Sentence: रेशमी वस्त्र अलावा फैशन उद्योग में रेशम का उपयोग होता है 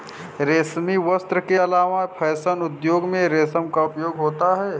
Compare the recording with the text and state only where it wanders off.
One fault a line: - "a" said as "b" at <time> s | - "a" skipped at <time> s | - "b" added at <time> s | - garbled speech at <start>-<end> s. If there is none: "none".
- "के" added at 1.4 s